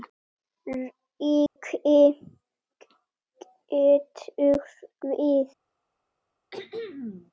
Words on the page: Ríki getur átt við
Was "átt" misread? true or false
true